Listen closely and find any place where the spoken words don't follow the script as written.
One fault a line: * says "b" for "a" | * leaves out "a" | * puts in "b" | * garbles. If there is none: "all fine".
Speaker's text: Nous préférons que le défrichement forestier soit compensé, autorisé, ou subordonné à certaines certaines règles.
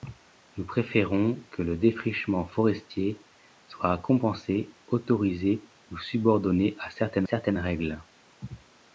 all fine